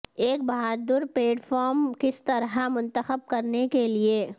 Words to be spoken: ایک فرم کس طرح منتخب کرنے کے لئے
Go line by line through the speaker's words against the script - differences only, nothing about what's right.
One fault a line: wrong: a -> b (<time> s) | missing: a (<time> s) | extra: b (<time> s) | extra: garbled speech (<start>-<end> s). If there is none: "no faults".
extra: بہادر پیڈ (0.4 s)